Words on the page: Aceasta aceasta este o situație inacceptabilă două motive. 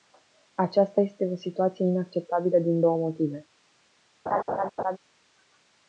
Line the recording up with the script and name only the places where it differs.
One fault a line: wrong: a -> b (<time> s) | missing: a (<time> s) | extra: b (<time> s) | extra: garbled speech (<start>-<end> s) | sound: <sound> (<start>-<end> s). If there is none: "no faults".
missing: aceasta (1.0 s)
extra: din (2.6 s)
sound: laugh (4.3-5.0 s)